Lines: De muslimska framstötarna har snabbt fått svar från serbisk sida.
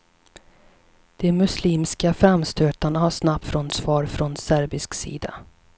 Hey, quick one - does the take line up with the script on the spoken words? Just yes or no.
no